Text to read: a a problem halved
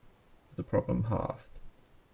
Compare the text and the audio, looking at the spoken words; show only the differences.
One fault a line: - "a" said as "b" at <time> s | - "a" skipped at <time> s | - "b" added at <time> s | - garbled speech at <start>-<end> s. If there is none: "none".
none